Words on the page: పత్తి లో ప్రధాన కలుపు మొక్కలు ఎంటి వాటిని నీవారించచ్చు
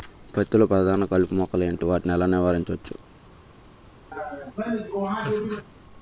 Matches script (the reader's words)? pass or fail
fail